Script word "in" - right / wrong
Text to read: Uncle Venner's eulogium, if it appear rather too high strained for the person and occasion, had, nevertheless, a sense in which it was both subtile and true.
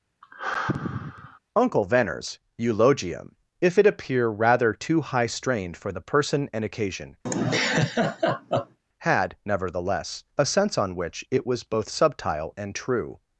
wrong